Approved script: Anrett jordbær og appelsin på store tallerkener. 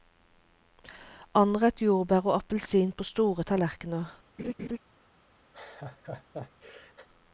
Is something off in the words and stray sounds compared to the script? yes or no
yes